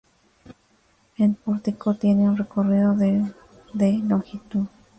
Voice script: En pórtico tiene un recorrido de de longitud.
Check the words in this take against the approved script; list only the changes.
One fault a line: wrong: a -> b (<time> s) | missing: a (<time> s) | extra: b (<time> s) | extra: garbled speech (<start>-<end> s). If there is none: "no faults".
no faults